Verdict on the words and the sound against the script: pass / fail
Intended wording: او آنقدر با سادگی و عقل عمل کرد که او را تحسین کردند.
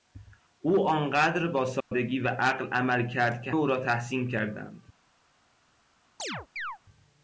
fail